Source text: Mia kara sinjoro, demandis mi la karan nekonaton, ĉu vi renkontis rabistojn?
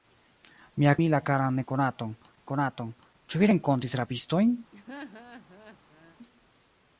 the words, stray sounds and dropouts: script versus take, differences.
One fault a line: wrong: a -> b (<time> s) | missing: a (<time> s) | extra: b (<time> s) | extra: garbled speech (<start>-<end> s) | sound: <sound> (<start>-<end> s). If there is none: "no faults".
missing: kara sinjoro demandis (0.9 s)
extra: nekonaton (2.4 s)
sound: laugh (4.7-6.2 s)